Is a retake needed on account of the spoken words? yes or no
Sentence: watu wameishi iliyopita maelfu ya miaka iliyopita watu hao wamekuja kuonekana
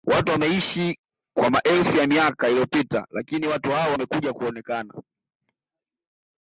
yes